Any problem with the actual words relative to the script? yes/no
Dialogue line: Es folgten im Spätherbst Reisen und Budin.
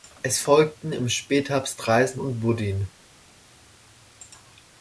no